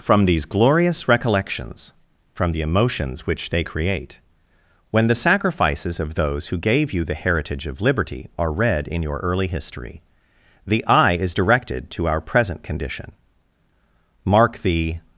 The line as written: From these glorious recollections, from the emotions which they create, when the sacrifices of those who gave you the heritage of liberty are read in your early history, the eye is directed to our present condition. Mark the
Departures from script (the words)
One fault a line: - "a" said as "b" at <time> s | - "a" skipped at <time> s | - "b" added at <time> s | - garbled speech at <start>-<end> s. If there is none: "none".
none